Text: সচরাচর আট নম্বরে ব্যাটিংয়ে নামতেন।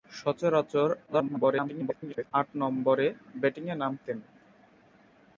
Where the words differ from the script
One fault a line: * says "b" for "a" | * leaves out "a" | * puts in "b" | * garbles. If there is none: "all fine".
* garbles